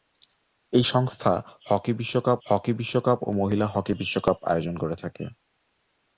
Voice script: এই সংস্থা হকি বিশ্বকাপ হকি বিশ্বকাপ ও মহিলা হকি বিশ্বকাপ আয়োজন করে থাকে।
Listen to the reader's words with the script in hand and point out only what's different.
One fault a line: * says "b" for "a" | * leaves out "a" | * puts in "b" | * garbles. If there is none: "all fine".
all fine